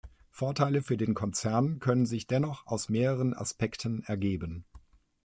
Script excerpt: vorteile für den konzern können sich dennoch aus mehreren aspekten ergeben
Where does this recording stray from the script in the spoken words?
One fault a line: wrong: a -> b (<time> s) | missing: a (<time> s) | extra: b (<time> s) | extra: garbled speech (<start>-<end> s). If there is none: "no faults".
no faults